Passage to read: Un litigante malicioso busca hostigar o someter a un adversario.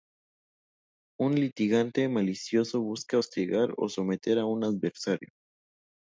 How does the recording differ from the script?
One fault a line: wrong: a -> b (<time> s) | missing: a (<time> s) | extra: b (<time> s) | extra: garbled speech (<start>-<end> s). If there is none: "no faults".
no faults